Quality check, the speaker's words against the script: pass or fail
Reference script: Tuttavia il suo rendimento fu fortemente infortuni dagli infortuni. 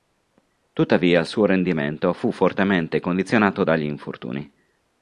fail